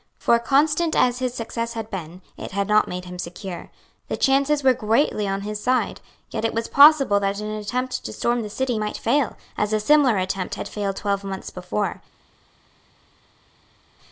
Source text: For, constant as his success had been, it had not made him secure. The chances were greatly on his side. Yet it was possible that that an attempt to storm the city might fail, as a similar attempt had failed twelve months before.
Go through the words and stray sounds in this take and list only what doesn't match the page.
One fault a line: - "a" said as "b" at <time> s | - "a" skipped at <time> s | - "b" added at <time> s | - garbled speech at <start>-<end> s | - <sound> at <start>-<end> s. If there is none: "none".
- "that" skipped at 7.4 s